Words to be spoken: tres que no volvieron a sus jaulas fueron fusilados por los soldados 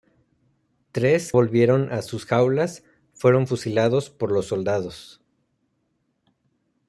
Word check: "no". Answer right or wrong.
wrong